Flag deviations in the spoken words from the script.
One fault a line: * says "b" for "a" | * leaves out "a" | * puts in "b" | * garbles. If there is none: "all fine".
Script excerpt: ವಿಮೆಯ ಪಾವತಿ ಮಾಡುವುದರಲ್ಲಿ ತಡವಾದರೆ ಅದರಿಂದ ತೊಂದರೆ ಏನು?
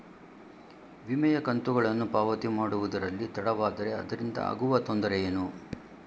* puts in "ಕಂತುಗಳನ್ನು"
* puts in "ಆಗುವ"